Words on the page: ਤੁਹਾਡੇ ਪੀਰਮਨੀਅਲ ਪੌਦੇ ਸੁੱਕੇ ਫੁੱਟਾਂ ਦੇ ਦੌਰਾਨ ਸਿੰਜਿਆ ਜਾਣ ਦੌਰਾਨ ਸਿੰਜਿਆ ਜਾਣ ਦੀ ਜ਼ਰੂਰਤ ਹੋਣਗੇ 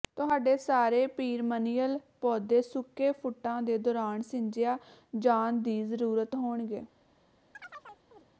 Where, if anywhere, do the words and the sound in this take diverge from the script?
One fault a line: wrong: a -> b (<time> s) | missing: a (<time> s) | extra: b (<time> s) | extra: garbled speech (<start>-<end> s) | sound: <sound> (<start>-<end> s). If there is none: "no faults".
extra: ਸਾਰੇ (0.6 s)
missing: ਦੌਰਾਨ ਸਿੰਜਿਆ ਜਾਣ (5.6 s)
sound: chirp (7.5-8.3 s)